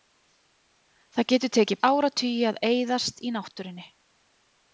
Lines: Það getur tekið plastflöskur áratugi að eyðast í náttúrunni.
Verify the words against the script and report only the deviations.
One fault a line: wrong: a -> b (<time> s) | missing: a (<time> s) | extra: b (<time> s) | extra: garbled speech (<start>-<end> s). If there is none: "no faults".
missing: plastflöskur (1.8 s)